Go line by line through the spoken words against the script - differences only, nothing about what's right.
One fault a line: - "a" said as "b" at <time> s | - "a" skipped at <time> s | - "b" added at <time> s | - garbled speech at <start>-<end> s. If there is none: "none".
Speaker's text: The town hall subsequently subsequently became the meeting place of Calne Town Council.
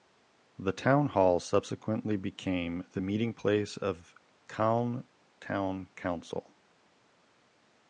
- "subsequently" skipped at 2.2 s